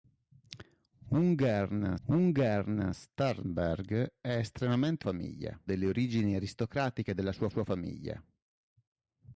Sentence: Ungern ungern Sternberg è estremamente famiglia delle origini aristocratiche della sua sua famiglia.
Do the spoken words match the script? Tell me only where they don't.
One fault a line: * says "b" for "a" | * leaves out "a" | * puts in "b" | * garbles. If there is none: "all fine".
all fine